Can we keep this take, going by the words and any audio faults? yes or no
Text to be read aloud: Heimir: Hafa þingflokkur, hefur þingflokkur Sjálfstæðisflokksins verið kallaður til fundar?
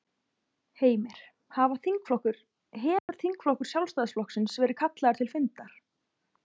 no